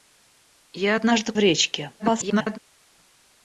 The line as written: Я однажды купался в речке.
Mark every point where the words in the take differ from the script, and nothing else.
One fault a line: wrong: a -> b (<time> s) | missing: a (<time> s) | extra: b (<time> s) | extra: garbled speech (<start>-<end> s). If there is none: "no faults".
missing: купался (1.3 s)
extra: garbled speech (2.0-2.6 s)